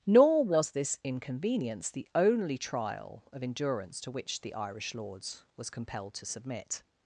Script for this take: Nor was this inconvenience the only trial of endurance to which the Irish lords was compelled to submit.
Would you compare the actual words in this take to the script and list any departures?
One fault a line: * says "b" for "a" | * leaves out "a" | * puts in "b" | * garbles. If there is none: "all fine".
all fine